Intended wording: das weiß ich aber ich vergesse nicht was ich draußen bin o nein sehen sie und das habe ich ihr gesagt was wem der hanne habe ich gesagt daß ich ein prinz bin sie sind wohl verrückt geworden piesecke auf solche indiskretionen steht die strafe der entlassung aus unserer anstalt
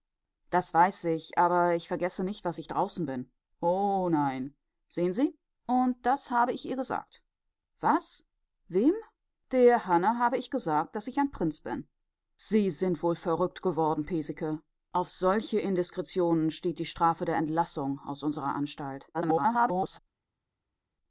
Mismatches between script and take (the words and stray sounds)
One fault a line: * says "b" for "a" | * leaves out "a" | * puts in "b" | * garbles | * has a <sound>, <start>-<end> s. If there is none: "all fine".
* garbles